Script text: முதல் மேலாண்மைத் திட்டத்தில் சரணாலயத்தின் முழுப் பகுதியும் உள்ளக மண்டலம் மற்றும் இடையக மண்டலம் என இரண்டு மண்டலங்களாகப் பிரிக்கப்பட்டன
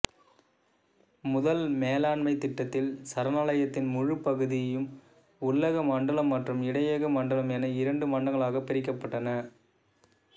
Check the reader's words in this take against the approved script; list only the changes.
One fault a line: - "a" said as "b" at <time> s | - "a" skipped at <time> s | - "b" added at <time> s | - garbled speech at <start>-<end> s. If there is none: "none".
none